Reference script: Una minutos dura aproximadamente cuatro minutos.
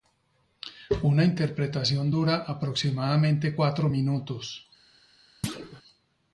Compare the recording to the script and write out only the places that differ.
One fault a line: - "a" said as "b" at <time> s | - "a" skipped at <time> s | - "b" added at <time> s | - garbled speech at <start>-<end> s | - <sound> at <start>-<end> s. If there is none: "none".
- "minutos" said as "interpretación" at 1.2 s
- thud at 5.4-5.8 s